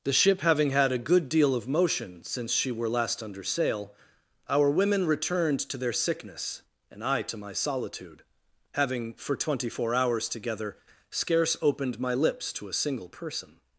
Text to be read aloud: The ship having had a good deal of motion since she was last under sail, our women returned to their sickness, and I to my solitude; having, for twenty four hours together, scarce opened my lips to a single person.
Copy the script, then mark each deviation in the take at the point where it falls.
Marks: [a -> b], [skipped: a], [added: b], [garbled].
The ship having had a good deal of motion since she [was -> were] last under sail, our women returned to their sickness, and I to my solitude; having, for twenty four hours together, scarce opened my lips to a single person.